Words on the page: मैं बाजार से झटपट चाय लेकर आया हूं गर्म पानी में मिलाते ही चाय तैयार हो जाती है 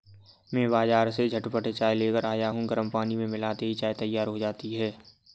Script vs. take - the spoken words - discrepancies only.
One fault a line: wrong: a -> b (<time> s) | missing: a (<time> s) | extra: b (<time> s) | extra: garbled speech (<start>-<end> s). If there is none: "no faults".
no faults